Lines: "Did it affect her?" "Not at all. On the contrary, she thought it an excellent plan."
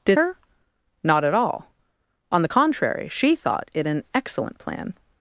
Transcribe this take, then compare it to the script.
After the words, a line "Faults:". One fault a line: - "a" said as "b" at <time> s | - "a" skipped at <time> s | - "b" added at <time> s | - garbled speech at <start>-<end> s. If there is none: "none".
"Did her?" "Not at all. On the contrary, she thought it an excellent plan."
Faults:
- "it affect" skipped at 0.2 s